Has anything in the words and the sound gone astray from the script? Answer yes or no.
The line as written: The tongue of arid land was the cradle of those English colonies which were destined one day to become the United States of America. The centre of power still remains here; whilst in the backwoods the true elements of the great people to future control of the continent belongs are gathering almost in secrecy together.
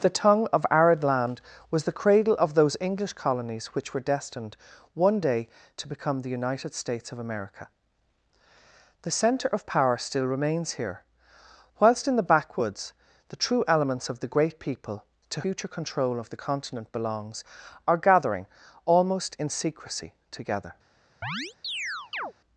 yes